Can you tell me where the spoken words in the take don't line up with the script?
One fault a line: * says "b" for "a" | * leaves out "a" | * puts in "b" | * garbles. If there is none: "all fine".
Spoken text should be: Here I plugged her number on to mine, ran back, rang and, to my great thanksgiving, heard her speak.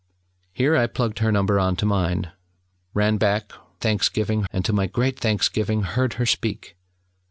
* says "thanksgiving" for "rang"